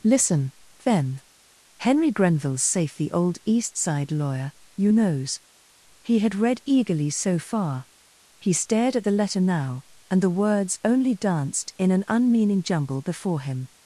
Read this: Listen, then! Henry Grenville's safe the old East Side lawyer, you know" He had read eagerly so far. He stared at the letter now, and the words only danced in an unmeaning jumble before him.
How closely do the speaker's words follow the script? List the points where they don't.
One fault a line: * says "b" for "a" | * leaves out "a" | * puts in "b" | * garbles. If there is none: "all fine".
* says "knows" for "know"